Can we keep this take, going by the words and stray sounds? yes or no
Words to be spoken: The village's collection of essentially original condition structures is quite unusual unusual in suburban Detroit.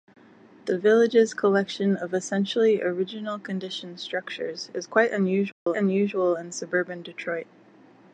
no